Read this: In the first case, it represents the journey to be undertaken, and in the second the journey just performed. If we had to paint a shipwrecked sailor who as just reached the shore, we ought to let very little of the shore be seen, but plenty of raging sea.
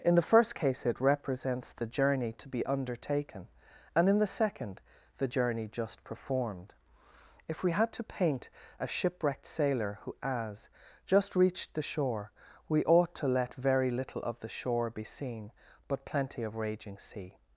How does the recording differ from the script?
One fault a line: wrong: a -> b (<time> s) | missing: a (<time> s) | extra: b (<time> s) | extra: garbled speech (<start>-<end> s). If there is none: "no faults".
no faults